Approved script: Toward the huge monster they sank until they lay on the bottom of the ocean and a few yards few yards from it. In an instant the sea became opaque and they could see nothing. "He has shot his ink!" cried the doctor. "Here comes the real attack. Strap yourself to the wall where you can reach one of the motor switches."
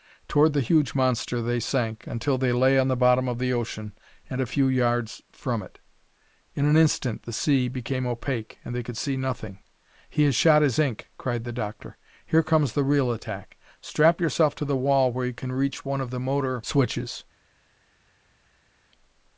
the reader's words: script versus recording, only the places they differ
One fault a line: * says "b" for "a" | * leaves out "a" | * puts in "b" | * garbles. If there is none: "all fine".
* leaves out "few yards"